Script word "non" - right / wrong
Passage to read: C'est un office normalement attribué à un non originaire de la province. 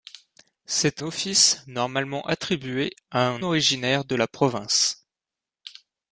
wrong